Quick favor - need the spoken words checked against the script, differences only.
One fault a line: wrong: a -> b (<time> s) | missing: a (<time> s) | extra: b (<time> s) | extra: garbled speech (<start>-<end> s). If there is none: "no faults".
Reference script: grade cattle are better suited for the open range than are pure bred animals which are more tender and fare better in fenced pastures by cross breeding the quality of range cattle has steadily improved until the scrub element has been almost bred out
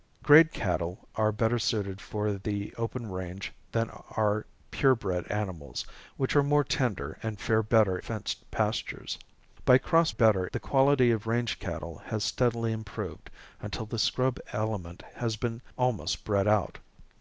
missing: in (8.0 s)
wrong: breeding -> better (10.1 s)